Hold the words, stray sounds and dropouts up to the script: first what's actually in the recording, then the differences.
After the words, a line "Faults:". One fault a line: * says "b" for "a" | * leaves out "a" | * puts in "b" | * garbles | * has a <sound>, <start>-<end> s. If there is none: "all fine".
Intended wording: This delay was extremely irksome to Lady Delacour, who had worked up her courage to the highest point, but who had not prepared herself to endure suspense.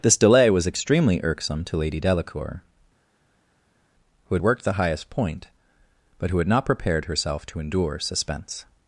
This delay was extremely irksome to Lady Delacour, who had worked the highest point, but who had not prepared herself to endure suspense.
Faults:
* leaves out "up her courage to"